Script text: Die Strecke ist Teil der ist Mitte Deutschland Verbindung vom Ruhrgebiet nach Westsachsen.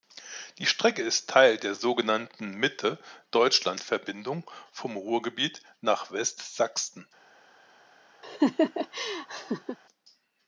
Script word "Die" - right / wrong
right